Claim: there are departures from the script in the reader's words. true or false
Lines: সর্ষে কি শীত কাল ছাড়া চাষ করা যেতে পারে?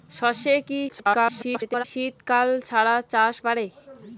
true